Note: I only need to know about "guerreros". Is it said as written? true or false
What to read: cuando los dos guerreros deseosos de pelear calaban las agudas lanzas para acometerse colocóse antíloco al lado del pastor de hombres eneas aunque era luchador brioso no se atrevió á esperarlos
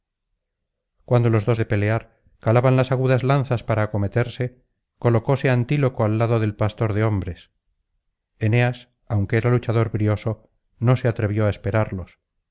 false